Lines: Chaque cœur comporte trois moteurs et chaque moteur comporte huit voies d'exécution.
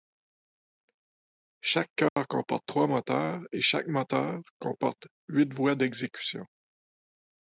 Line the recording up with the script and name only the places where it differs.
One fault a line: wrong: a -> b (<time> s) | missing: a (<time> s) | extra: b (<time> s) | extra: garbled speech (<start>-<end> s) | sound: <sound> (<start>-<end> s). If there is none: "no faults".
sound: dropout (2.1-2.2 s)